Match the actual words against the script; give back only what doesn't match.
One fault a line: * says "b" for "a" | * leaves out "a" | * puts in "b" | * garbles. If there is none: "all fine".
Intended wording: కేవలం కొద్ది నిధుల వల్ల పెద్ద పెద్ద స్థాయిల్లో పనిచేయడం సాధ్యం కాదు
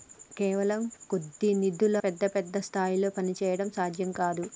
* leaves out "వల్ల"